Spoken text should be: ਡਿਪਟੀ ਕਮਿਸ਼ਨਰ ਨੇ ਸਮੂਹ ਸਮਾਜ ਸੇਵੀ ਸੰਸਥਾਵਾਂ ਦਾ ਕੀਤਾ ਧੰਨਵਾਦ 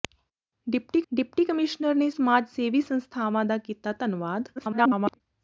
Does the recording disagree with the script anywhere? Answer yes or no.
yes